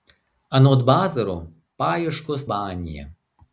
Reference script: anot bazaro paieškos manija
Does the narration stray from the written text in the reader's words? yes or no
no